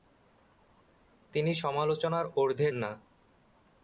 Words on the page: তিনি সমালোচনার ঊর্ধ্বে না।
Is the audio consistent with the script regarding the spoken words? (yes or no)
yes